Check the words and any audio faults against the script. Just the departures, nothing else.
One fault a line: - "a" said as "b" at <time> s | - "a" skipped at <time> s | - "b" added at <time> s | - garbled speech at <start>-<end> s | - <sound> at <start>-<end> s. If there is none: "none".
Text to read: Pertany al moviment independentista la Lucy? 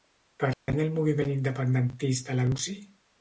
- dropout at 0.5-0.7 s